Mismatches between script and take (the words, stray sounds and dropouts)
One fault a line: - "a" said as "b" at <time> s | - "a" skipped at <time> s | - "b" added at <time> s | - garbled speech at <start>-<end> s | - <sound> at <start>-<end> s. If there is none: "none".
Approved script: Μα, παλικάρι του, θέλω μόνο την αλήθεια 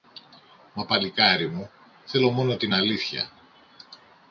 - "του" said as "μου" at 1.5 s